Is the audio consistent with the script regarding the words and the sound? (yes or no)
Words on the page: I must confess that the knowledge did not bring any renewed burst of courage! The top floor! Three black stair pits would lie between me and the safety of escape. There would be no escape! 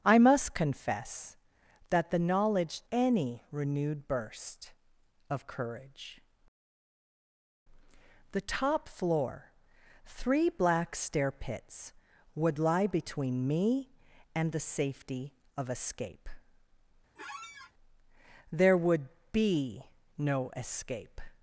no